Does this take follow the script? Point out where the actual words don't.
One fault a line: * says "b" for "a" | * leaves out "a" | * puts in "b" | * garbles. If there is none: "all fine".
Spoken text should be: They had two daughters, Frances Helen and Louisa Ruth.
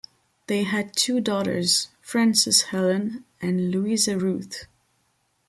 all fine